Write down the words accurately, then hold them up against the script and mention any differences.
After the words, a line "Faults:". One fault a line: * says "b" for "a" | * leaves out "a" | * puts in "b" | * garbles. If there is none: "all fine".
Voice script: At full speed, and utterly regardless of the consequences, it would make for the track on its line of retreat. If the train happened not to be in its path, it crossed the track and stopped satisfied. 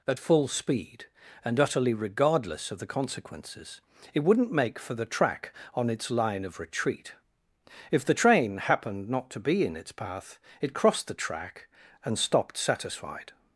At full speed, and utterly regardless of the consequences, it wouldn't make for the track on its line of retreat. If the train happened not to be in its path, it crossed the track and stopped satisfied.
Faults:
* says "wouldn't" for "would"